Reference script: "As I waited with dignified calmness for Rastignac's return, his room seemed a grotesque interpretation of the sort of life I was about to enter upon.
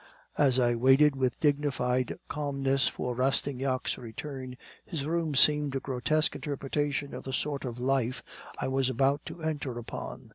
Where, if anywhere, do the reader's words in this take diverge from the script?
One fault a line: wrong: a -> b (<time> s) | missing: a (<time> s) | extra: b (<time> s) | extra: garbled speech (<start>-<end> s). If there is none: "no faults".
no faults